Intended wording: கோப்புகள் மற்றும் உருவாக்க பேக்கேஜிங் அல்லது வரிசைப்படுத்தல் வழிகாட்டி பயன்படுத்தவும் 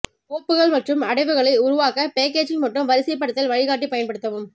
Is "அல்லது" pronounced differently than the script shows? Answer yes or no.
yes